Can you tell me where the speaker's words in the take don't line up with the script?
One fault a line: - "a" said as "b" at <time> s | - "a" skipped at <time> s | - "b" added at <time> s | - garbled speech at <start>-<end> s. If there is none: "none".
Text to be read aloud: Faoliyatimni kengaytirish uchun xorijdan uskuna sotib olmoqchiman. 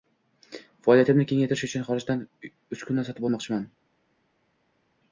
none